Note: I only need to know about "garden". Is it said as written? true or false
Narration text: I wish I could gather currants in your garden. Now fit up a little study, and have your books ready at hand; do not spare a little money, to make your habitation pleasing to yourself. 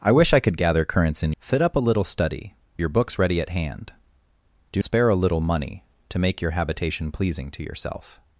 false